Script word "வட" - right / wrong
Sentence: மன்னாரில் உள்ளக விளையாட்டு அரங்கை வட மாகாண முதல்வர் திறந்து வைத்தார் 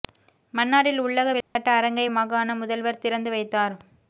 wrong